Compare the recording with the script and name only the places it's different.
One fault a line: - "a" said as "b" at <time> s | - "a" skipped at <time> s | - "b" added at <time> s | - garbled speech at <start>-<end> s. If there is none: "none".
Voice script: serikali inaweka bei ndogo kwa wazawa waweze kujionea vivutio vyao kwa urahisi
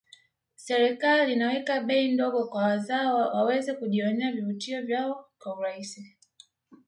none